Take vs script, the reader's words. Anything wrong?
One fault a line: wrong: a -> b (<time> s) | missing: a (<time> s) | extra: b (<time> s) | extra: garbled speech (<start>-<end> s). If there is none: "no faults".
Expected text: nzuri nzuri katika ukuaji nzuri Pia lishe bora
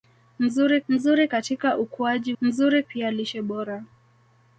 no faults